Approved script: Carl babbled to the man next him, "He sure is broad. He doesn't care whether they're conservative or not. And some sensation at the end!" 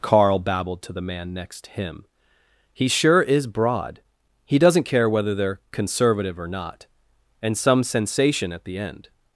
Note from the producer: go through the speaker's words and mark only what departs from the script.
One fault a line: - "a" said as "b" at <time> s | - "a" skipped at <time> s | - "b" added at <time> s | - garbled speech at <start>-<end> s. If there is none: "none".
none